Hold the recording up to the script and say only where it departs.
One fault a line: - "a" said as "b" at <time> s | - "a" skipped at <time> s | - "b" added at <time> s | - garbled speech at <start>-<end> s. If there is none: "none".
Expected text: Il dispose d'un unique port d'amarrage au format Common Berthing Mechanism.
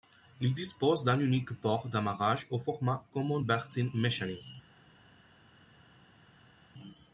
none